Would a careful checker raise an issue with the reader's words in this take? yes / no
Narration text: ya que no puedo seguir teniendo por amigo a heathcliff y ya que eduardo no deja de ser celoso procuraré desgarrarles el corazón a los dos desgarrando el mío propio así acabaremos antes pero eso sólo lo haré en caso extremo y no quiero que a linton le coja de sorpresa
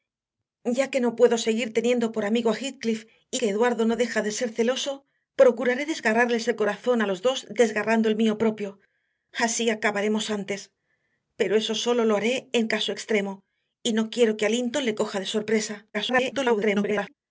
yes